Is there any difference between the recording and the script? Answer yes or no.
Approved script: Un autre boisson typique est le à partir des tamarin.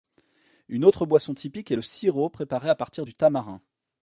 yes